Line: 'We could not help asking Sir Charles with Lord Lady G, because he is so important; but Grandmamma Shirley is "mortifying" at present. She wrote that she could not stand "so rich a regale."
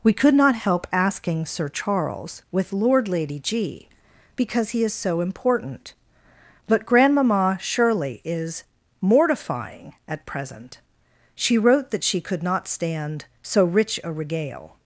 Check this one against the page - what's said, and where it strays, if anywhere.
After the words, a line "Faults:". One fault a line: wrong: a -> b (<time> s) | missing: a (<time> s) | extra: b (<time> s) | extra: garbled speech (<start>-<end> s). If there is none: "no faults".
'We could not help asking Sir Charles with Lord Lady G, because he is so important; but Grandmamma Shirley is "mortifying" at present. She wrote that she could not stand "so rich a regale."
Faults:
no faults